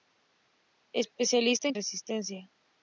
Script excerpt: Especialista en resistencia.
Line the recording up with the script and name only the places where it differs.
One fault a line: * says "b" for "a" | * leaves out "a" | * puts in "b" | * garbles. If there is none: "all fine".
all fine